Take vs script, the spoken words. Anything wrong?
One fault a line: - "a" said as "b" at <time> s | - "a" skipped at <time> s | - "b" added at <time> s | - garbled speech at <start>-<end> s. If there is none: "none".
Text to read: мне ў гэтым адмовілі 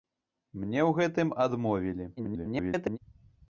- garbled speech at 2.2-3.0 s